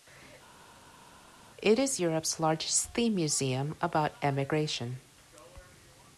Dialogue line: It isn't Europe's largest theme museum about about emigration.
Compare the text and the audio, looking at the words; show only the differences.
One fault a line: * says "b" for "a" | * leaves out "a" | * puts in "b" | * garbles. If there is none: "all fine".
* says "is" for "isn't"
* leaves out "about"